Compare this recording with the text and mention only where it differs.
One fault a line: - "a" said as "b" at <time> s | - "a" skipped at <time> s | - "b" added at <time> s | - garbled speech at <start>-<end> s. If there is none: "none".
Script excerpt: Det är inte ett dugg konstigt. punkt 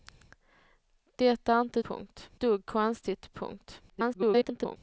- "ett" said as "punkt" at 1.8 s
- garbled speech at 3.9-4.8 s